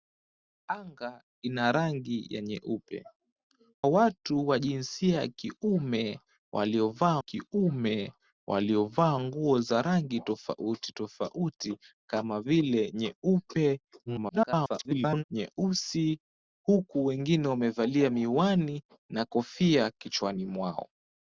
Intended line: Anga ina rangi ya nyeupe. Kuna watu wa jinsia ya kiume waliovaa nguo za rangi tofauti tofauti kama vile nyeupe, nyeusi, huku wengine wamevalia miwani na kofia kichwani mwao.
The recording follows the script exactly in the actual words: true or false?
false